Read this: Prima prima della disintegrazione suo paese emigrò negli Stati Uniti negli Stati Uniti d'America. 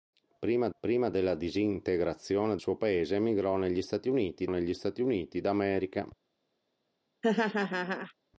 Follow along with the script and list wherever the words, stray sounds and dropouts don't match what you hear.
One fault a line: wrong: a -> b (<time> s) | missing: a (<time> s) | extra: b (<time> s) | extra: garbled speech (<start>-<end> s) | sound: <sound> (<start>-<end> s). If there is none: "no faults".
sound: laugh (7.2-8.1 s)